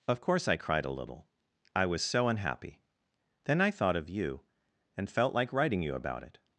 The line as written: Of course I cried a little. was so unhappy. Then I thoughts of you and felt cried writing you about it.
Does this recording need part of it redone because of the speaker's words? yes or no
yes